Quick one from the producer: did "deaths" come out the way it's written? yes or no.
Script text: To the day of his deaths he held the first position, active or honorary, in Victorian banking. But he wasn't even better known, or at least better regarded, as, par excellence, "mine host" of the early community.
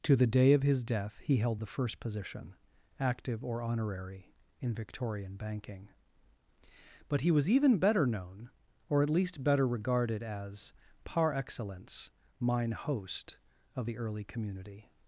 no